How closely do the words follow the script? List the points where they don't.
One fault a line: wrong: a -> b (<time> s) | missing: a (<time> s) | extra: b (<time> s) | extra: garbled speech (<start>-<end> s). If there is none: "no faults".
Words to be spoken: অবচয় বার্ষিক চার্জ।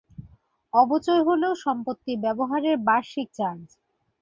extra: হল সম্পত্তি ব্যবহারের (1.3 s)